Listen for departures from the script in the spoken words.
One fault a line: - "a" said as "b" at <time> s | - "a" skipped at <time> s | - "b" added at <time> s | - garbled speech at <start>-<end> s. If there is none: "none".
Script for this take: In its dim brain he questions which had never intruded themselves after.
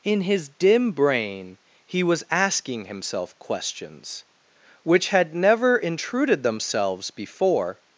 - "its" said as "his" at 0.2 s
- "was asking himself" added at 2.0 s
- "after" said as "before" at 7.1 s